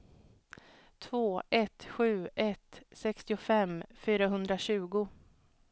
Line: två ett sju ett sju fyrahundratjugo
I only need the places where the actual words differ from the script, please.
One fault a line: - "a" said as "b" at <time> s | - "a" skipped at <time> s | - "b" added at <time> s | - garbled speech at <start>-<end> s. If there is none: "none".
- "sju" said as "sextiofem" at 2.9 s